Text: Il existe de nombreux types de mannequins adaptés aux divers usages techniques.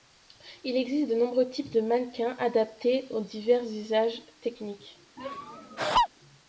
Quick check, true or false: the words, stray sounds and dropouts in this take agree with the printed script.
false